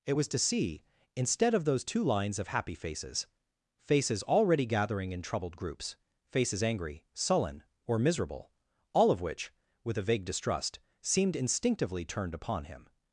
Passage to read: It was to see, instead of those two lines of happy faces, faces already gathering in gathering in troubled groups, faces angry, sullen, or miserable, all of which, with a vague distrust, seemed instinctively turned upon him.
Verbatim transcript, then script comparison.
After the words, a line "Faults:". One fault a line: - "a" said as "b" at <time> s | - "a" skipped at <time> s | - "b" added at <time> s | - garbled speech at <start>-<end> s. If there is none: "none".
It was to see, instead of those two lines of happy faces, faces already gathering in troubled groups, faces angry, sullen, or miserable, all of which, with a vague distrust, seemed instinctively turned upon him.
Faults:
- "gathering in" skipped at 5.2 s